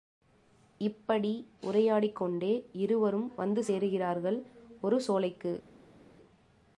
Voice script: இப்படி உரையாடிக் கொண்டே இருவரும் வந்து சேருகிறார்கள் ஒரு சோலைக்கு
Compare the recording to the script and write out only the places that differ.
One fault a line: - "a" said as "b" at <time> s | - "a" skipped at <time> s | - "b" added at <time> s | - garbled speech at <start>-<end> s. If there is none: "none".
none